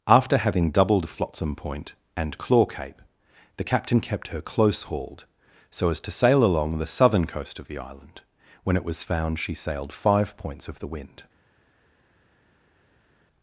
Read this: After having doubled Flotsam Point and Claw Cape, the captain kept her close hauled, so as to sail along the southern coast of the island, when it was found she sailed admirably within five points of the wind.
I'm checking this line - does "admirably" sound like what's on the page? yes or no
no